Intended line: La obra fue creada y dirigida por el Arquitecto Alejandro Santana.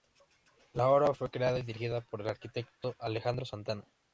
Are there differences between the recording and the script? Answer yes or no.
no